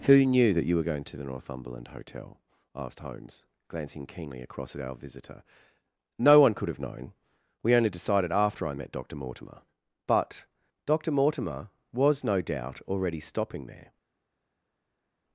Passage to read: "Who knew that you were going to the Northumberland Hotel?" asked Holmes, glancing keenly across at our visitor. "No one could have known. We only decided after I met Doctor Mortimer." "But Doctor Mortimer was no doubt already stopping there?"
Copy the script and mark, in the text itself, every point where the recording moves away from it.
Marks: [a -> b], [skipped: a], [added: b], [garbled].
"Who knew that you were going to the Northumberland Hotel?" asked Holmes, glancing keenly across at our visitor. "No one could have known. We only decided after I met Doctor Mortimer." "But Doctor Mortimer was no doubt already stopping there?"